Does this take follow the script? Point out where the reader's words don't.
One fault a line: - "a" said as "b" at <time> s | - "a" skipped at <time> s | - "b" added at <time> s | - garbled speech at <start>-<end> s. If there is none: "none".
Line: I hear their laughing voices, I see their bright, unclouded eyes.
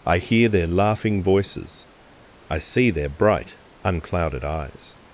none